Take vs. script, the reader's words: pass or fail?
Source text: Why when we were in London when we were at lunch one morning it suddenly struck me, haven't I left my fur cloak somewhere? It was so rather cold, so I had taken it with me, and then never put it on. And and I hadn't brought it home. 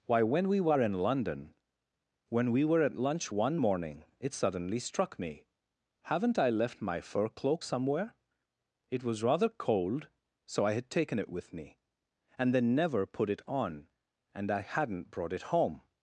fail